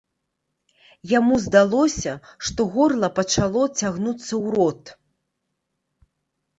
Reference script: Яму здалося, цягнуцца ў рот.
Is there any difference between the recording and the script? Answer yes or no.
yes